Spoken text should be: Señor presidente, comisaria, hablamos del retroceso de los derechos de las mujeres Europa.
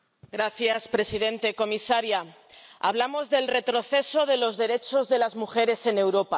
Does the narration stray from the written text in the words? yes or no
yes